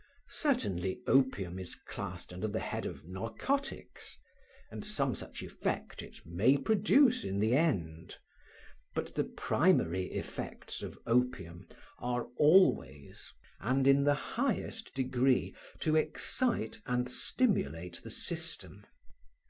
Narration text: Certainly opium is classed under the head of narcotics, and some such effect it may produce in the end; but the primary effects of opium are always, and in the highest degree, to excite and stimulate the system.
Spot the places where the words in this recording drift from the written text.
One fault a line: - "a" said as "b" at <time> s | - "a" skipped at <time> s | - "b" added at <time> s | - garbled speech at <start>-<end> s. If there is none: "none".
none